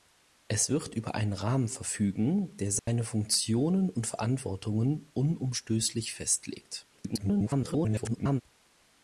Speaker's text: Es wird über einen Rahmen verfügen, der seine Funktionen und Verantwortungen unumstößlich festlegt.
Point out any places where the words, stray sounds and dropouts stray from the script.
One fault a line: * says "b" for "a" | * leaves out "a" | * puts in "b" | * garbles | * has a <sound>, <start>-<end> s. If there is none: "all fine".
* has a dropout, 2.8-2.9 s
* garbles